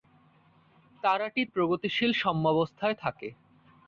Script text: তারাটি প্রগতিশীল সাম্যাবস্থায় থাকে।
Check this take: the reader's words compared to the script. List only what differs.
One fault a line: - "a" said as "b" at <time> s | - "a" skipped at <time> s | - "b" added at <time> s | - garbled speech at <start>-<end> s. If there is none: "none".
none